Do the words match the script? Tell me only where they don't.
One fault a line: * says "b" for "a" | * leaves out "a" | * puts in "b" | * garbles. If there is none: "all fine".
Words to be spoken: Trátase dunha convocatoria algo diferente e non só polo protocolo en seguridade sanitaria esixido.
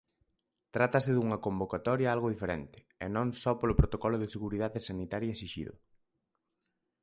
* says "de" for "en"